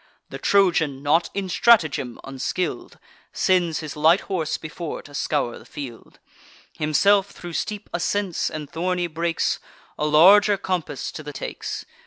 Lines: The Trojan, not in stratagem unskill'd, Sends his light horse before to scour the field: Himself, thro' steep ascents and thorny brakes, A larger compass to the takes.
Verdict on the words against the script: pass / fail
pass